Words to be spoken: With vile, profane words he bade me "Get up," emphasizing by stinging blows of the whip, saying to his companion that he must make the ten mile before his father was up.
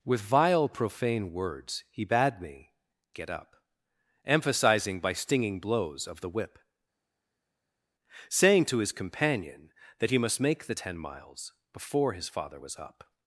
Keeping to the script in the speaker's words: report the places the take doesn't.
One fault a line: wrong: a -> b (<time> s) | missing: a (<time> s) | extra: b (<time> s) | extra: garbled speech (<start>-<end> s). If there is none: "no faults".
wrong: mile -> miles (11.0 s)